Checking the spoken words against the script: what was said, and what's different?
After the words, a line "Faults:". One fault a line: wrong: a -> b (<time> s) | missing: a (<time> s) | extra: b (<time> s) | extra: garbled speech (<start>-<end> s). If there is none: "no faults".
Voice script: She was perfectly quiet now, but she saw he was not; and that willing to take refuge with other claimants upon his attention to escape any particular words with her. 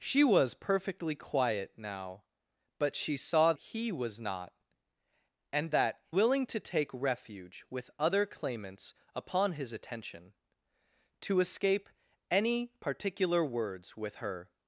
She was perfectly quiet now, but she saw he was not; and that willing to take refuge with other claimants upon his attention to escape any particular words with her.
Faults:
no faults